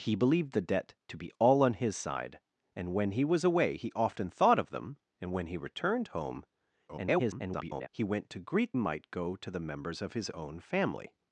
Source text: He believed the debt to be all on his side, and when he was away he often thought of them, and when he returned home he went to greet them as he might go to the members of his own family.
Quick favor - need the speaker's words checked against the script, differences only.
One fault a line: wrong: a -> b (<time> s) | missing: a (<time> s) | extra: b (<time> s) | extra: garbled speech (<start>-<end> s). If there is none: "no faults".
extra: garbled speech (6.9-7.9 s)
missing: them as he (8.8 s)